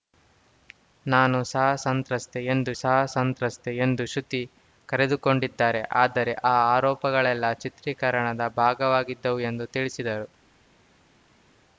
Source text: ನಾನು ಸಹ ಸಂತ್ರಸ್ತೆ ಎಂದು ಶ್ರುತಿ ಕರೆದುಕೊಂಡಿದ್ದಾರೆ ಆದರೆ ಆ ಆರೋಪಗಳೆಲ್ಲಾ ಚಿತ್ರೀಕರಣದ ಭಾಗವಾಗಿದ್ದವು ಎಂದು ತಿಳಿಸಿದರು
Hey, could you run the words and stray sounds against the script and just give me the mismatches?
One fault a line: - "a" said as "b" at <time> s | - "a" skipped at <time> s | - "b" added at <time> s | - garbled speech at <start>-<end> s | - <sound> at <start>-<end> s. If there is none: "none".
- "ಸಹ ಸಂತ್ರಸ್ತೆ ಎಂದು" added at 2.7 s